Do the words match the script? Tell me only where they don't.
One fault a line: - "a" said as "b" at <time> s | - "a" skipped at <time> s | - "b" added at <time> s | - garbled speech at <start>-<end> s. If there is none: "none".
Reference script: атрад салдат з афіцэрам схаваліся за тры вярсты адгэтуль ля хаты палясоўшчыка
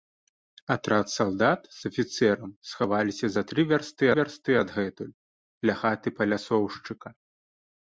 - "вярсты" added at 4.2 s